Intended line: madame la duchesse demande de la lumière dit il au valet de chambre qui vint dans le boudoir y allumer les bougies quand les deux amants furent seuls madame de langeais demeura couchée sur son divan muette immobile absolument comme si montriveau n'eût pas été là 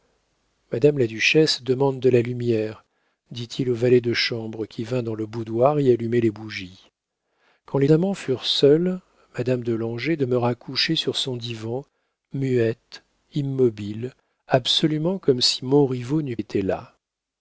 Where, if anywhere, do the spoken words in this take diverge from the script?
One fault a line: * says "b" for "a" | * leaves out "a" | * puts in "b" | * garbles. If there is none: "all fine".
* leaves out "deux"
* leaves out "pas"